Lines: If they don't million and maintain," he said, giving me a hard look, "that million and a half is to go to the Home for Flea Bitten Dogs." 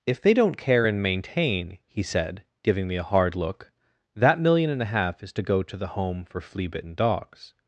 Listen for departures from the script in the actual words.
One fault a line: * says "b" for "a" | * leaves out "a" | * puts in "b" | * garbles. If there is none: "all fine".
* says "care" for "million"